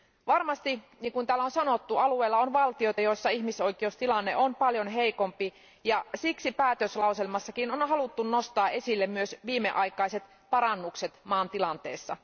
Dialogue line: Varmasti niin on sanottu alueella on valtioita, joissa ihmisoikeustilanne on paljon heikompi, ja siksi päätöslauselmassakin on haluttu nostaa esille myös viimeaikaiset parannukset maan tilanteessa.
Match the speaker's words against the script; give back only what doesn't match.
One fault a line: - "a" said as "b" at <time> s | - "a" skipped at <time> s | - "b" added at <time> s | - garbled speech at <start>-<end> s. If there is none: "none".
- "kuin täällä" added at 1.1 s